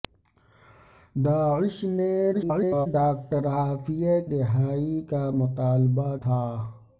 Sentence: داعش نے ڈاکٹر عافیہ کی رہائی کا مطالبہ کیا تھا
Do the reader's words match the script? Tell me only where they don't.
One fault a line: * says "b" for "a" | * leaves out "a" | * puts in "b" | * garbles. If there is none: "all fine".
* garbles
* leaves out "کی"
* leaves out "کیا"